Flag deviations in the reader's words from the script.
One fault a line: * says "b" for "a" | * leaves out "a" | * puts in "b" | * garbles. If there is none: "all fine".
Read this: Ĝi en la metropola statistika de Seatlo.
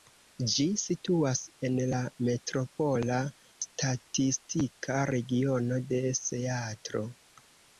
* puts in "situas"
* puts in "regiono"